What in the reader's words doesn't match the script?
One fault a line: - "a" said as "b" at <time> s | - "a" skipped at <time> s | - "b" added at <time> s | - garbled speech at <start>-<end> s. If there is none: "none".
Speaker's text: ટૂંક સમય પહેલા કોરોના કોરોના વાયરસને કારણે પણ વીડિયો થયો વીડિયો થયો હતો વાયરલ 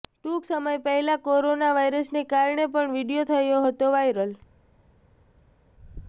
- "કોરોના" skipped at 1.7 s
- "વીડિયો થયો" skipped at 3.7 s